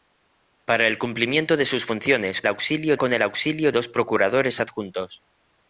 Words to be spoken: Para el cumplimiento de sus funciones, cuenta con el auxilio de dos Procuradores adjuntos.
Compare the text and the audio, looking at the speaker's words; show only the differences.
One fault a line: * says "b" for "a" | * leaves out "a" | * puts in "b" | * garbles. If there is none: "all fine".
* says "auxilio" for "cuenta"
* leaves out "de"